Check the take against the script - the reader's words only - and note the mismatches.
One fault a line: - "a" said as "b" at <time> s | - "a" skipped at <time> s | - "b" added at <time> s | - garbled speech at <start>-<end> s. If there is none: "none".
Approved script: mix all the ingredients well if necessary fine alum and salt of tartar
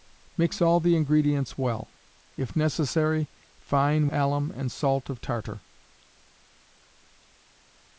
none